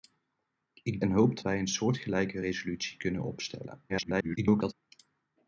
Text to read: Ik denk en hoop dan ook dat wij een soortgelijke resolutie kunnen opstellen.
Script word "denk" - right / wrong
wrong